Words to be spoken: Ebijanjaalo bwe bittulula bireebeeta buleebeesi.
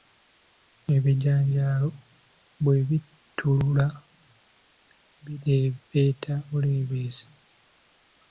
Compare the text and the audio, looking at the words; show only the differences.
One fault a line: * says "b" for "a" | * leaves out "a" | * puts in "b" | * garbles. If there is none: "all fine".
all fine